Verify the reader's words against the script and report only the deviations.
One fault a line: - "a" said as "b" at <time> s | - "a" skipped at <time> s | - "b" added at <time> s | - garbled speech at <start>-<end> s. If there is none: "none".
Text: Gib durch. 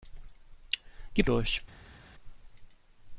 none